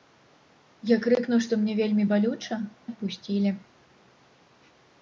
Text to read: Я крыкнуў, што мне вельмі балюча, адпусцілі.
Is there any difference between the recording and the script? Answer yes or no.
no